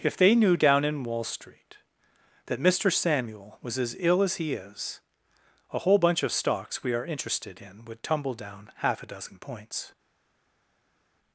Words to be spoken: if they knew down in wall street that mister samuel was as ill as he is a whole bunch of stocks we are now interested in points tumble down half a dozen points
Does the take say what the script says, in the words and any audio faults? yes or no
no